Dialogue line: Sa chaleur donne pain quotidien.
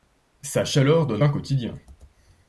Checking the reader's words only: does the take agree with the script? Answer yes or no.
yes